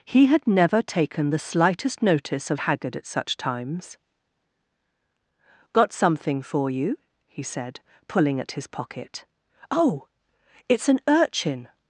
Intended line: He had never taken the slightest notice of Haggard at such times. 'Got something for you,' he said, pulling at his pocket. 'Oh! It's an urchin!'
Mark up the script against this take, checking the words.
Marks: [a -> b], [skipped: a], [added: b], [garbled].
He had never taken the slightest notice of Haggard at such times. 'Got something for you,' he said, pulling at his pocket. 'Oh! It's an urchin!'